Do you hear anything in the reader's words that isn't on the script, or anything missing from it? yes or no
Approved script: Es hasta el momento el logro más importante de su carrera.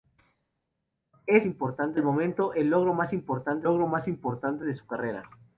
yes